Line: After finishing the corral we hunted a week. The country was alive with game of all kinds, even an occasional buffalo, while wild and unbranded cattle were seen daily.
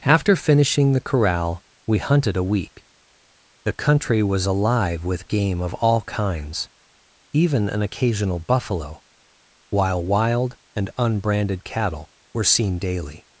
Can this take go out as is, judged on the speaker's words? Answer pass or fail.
pass